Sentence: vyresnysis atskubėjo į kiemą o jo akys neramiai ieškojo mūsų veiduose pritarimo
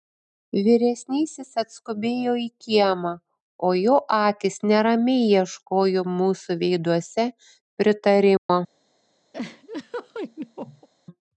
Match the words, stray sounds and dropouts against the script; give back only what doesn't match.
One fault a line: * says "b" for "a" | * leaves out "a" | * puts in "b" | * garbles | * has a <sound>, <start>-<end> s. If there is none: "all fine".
* has a dropout, 8.4-8.5 s
* has a laugh, 9.3-10.9 s